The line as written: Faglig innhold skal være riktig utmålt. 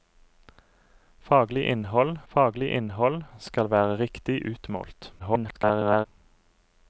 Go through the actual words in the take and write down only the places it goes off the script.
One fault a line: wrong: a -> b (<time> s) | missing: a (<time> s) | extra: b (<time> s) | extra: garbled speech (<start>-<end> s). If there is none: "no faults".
extra: faglig innhold (2.3 s)
extra: garbled speech (5.2-6.1 s)